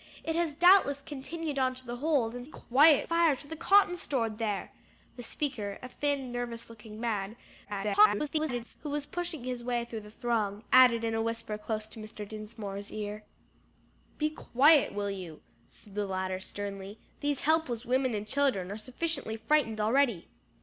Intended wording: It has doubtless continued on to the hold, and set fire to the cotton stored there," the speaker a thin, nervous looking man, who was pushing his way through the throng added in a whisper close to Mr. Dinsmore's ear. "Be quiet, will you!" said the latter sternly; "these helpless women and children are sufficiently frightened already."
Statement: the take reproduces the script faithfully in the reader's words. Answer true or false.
false